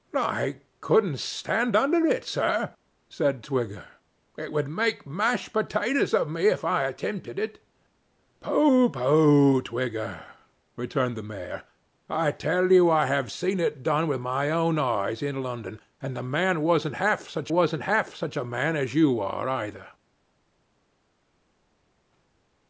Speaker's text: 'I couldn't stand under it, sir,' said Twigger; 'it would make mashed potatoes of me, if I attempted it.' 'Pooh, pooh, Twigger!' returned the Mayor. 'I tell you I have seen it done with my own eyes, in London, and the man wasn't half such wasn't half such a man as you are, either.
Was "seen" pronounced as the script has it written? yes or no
yes